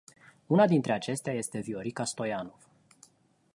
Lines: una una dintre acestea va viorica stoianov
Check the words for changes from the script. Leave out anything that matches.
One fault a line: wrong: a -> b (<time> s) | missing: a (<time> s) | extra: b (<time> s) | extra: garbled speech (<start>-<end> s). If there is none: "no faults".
missing: una (0.7 s)
wrong: va -> este (1.3 s)